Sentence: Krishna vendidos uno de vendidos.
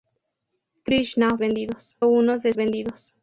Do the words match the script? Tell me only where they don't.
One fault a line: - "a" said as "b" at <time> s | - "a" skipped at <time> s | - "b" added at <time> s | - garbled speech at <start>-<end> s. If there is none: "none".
none